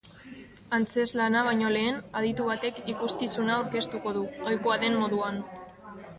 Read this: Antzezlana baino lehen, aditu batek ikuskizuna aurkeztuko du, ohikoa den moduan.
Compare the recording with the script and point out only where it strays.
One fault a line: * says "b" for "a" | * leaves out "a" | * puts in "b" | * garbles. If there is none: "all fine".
all fine